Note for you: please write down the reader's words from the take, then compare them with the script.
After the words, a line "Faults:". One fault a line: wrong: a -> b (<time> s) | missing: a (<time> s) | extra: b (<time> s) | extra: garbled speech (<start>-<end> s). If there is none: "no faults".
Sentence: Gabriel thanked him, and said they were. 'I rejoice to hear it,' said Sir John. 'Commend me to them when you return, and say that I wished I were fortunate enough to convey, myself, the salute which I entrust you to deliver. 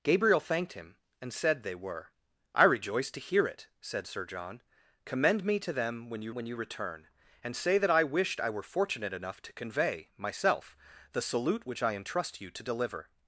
Gabriel thanked him, and said they were. 'I rejoice to hear it,' said Sir John. 'Commend me to them when you when you return, and say that I wished I were fortunate enough to convey, myself, the salute which I entrust you to deliver.
Faults:
extra: when you (6.3 s)